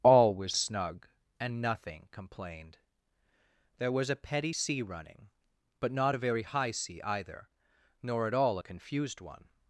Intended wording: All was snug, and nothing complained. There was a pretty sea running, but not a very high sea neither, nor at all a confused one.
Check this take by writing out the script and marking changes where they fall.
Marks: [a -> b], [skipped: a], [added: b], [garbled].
All was snug, and nothing complained. There was a [pretty -> petty] sea running, but not a very high sea [neither, -> either] nor at all a confused one.